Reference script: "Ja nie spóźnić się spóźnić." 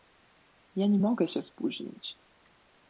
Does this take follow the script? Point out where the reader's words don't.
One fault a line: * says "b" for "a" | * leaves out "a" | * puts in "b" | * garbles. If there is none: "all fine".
* says "mogę" for "spóźnić"